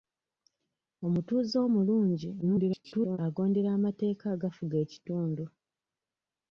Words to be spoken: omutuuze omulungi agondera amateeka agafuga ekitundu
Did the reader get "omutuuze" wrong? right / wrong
right